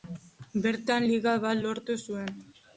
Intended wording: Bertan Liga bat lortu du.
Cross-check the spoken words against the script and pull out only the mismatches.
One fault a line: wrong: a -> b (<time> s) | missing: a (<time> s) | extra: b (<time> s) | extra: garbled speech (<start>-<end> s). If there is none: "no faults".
wrong: du -> zuen (2.1 s)